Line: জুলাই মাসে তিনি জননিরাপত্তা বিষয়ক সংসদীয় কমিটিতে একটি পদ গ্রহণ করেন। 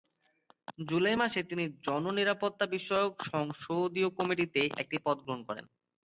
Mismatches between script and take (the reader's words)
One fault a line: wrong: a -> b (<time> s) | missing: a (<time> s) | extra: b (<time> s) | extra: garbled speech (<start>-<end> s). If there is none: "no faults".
no faults